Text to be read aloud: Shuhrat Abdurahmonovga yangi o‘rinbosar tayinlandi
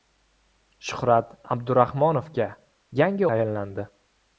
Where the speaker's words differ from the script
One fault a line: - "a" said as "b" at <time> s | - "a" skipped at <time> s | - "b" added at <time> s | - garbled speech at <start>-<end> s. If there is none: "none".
- "o‘rinbosar" skipped at 3.3 s